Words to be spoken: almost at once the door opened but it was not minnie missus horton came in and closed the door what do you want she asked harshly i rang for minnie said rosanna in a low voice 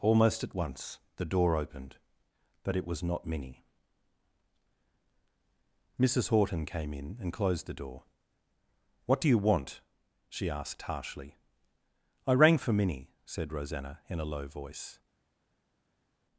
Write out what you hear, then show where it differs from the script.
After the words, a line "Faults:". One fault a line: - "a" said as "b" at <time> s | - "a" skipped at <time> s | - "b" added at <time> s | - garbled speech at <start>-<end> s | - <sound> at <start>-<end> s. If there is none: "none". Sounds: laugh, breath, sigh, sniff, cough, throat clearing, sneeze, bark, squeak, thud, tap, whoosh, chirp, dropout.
almost at once the door opened but it was not minnie missus horton came in and closed the door what do you want she asked harshly i rang for minnie said rosanna in a low voice
Faults:
none